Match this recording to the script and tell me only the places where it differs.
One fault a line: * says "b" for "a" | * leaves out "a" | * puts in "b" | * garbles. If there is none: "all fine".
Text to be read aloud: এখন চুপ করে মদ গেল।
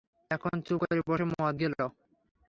* puts in "বসে"